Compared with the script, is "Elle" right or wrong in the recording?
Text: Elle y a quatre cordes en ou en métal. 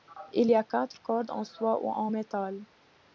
wrong